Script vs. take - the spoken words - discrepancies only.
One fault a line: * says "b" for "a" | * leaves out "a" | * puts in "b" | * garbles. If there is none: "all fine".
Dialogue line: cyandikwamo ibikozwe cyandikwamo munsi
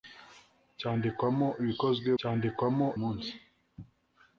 all fine